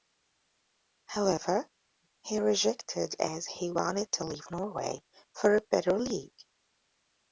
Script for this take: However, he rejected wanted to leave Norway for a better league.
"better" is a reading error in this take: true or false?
false